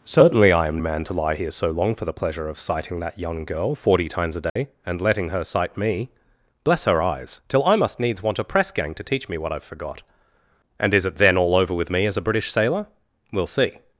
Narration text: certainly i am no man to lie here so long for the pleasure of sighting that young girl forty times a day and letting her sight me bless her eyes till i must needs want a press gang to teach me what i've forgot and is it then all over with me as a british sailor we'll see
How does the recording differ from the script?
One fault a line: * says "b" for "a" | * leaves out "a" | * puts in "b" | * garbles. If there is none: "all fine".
* leaves out "no"